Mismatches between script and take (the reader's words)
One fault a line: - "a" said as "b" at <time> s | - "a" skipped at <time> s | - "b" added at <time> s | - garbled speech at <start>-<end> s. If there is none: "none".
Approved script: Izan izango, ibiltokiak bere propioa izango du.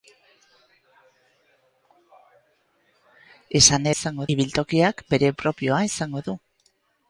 none